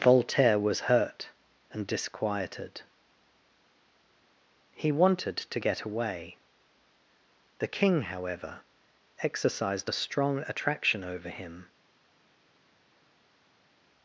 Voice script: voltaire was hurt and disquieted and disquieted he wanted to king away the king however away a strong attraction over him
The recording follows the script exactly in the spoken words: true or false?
false